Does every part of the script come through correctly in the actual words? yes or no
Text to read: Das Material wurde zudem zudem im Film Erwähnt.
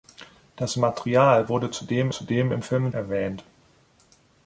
yes